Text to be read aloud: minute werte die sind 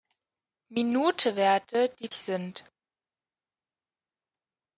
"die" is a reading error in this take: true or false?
false